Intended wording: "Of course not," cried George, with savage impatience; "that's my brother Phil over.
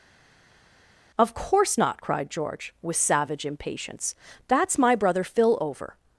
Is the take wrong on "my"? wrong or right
right